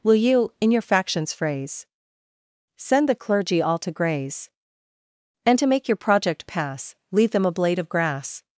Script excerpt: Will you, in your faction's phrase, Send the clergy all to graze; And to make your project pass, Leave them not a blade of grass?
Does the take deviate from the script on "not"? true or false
true